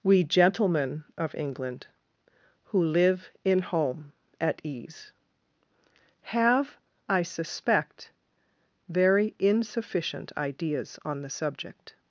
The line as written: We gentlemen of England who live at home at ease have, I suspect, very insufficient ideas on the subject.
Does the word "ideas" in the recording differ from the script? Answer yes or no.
no